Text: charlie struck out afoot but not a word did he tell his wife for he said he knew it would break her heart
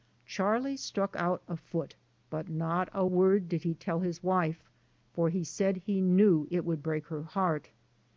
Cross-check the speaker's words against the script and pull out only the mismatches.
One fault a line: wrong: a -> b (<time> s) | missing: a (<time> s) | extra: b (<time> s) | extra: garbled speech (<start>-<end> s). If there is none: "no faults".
no faults